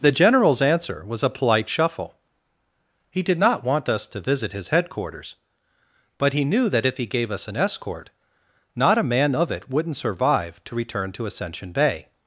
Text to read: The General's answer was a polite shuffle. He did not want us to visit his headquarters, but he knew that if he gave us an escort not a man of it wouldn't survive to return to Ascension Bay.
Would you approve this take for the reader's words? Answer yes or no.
yes